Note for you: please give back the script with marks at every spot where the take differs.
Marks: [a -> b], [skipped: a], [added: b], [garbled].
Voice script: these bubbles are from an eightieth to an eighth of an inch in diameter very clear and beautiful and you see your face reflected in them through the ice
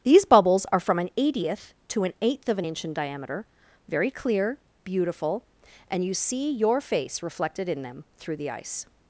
these bubbles are from an eightieth to an eighth of an inch in diameter very clear [skipped: and] beautiful and you see your face reflected in them through the ice